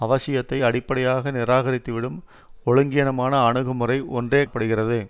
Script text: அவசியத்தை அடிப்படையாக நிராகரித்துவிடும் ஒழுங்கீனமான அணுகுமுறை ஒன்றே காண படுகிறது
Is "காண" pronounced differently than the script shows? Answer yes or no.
yes